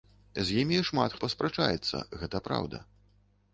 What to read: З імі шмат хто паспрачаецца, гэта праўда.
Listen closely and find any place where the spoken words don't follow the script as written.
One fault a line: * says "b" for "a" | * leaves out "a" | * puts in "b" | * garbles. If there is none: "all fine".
* leaves out "хто"